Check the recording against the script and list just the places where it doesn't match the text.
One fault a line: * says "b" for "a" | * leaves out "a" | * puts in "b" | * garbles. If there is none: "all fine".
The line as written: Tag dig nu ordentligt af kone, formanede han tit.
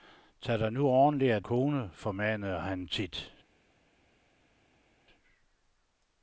all fine